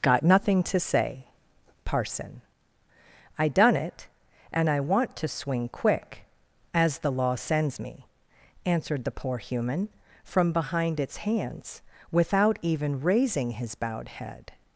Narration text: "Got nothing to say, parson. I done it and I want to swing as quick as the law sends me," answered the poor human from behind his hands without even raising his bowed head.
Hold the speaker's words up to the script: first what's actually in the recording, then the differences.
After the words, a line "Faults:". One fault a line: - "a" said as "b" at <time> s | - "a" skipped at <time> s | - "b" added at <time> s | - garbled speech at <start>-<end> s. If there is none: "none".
"Got nothing to say, parson. I done it and I want to swing quick as the law sends me," answered the poor human from behind its hands without even raising his bowed head.
Faults:
- "as" skipped at 5.7 s
- "his" said as "its" at 11.0 s